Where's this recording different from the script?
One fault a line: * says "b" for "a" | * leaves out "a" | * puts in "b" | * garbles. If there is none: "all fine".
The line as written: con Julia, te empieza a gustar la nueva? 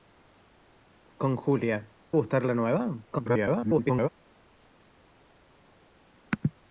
* leaves out "te empieza"
* garbles